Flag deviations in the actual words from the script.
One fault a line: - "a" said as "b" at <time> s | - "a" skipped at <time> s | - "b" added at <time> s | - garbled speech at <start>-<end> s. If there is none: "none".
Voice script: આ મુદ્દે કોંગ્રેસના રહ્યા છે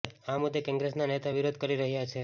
- "નેતા વિરોધ કરી" added at 1.1 s